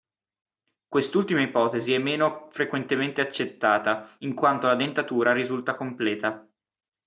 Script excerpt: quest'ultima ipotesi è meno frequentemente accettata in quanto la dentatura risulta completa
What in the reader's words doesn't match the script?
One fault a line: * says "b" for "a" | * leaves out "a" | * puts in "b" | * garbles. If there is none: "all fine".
all fine